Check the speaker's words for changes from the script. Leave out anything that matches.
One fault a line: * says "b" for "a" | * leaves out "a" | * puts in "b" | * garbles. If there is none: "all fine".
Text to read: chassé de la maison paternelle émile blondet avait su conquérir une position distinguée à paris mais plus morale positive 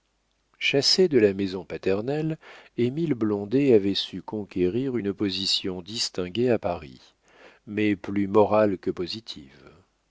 * puts in "que"